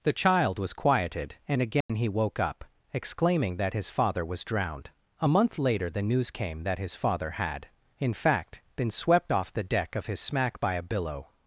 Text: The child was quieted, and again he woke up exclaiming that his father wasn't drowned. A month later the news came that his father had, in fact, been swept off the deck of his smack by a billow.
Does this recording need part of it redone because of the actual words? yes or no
yes